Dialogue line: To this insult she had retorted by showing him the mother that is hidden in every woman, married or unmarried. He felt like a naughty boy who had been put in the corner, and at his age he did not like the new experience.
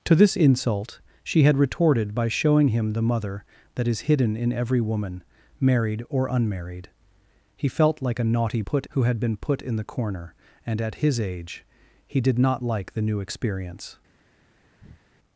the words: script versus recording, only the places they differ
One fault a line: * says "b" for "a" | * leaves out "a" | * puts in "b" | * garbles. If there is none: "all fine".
* says "put" for "boy"